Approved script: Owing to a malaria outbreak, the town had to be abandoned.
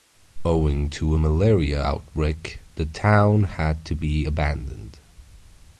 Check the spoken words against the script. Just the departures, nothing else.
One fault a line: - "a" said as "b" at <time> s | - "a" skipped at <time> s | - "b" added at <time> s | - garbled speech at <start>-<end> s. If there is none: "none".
none